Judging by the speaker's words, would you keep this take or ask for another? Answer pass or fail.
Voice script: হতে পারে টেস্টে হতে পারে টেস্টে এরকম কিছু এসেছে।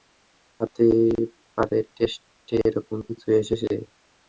fail